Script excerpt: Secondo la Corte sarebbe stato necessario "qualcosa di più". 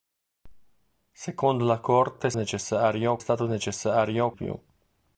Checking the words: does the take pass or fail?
fail